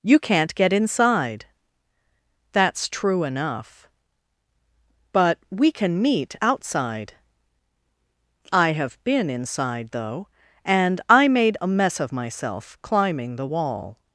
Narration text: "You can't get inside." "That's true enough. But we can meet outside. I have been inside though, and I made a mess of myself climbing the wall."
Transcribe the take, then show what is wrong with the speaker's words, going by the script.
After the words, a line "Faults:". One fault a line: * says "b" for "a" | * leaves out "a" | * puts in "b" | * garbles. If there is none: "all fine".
"You can't get inside." "That's true enough. But we can meet outside. I have been inside though, and I made a mess of myself climbing the wall."
Faults:
all fine